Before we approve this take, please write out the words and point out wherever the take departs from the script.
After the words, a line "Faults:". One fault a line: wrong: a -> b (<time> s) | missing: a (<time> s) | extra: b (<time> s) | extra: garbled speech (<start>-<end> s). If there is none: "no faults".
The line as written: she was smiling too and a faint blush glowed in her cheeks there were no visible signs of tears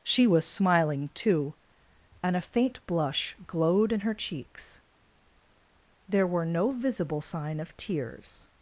she was smiling too and a faint blush glowed in her cheeks there were no visible sign of tears
Faults:
wrong: signs -> sign (7.2 s)